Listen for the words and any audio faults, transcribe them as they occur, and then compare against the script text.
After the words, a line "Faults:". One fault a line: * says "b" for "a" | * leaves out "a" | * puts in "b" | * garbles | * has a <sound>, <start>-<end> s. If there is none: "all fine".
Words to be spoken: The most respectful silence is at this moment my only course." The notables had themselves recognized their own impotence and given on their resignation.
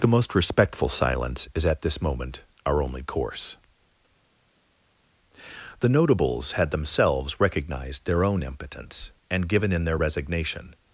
The most respectful silence is at this moment our only course." The notables had themselves recognized their own impotence and given in their resignation.
Faults:
* says "our" for "my"
* says "in" for "on"